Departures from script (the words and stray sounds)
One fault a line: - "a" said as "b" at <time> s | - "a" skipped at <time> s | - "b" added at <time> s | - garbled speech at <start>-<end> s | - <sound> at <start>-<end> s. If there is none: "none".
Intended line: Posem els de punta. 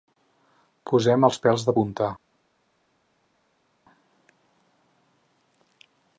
- "pèls" added at 1.4 s